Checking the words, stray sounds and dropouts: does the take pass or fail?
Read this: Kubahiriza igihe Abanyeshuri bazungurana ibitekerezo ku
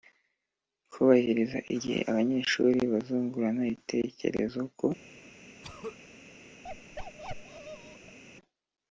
fail